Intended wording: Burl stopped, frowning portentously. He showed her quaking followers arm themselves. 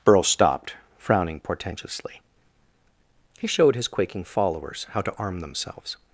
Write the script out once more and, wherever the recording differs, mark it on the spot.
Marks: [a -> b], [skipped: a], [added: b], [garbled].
Burl stopped, frowning portentously. He showed [her -> his] quaking followers [added: how to] arm themselves.